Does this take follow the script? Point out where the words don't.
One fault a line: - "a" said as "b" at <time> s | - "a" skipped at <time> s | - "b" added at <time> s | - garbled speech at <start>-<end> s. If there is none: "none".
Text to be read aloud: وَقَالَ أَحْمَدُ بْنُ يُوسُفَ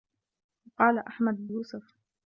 - "بْنُ" skipped at 1.5 s